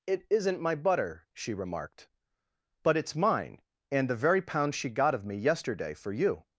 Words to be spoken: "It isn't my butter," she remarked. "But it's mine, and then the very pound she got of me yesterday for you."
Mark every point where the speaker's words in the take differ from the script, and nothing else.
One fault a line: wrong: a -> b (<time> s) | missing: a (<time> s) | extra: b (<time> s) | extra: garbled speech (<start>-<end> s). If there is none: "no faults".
missing: then (4.1 s)